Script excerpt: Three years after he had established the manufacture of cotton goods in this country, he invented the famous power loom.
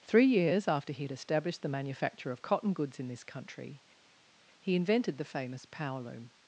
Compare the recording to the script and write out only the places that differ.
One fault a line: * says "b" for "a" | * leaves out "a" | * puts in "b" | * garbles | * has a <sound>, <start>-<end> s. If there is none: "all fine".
all fine